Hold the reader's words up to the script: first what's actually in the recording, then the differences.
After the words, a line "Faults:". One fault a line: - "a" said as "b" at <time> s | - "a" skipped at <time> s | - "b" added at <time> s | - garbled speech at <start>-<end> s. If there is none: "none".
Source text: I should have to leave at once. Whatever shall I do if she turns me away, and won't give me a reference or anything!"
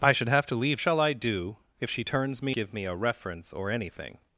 I should have to leave shall I do if she turns me give me a reference or anything!"
Faults:
- "at once Whatever" skipped at 0.8 s
- "away and won't" skipped at 2.5 s